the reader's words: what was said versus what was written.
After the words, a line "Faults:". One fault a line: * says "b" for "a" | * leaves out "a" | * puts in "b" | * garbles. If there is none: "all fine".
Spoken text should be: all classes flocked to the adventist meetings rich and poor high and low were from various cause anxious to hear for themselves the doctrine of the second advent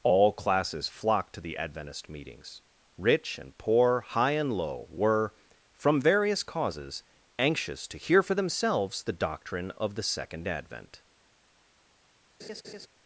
all classes flocked to the adventist meetings rich and poor high and low were from various causes anxious to hear for themselves the doctrine of the second advent
Faults:
* says "causes" for "cause"